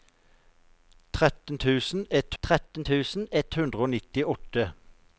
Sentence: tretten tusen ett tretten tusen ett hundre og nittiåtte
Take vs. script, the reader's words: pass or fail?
pass